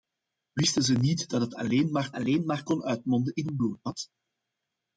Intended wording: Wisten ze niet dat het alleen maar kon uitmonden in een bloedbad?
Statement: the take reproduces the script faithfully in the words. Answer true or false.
false